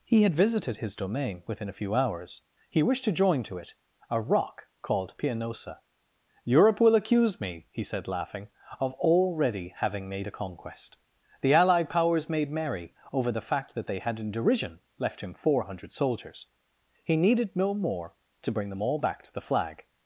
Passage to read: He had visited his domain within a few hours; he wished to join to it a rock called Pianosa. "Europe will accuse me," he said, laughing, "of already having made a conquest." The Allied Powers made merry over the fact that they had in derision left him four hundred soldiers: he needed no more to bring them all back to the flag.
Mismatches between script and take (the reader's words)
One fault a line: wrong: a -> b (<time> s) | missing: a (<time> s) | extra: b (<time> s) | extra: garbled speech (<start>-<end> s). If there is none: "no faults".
no faults